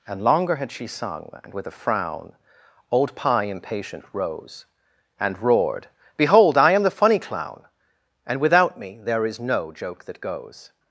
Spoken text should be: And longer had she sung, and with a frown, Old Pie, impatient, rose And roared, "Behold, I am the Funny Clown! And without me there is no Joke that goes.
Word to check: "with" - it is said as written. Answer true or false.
true